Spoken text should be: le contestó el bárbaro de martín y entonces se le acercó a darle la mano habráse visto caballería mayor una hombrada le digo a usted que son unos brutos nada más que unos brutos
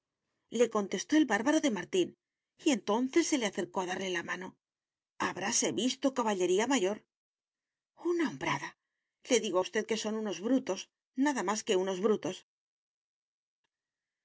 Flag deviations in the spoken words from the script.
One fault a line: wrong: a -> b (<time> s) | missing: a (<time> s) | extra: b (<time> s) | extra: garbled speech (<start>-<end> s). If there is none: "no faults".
no faults